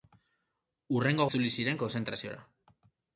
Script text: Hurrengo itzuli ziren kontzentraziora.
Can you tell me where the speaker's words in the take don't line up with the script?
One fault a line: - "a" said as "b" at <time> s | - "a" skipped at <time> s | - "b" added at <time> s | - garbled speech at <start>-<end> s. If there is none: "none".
none